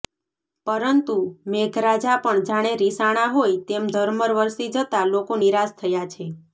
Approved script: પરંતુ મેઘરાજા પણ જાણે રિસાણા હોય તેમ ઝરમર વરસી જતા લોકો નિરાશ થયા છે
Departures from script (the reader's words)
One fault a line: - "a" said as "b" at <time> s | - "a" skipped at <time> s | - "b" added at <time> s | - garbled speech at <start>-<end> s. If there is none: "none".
none